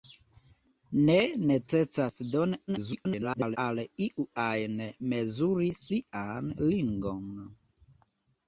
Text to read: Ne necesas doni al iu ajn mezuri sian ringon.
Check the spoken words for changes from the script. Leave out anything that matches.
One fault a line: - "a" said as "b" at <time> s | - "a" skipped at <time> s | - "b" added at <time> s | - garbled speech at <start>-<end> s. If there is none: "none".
- garbled speech at 2.7-3.6 s